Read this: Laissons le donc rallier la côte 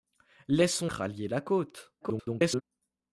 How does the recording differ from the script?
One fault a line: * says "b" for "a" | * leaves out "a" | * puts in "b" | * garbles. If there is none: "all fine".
* leaves out "le donc"
* garbles